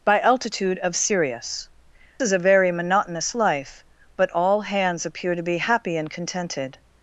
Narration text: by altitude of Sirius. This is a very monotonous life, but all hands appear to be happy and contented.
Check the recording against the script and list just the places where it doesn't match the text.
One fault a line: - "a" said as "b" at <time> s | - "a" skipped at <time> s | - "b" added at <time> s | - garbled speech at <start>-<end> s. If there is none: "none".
- "This" skipped at 1.7 s